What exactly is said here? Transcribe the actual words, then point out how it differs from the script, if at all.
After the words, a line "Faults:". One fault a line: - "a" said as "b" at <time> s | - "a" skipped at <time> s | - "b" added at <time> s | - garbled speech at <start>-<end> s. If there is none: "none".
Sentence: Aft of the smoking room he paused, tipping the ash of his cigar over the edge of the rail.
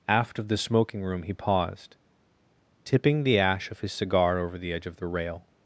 Aft of the smoking room he paused, tipping the ash of his cigar over the edge of the rail.
Faults:
none